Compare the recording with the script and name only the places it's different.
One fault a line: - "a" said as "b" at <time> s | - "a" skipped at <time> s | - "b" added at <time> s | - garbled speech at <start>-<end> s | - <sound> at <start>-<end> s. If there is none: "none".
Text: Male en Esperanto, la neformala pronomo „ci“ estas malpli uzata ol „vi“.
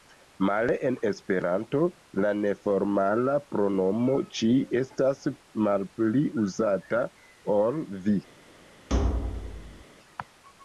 - thud at 8.9-9.8 s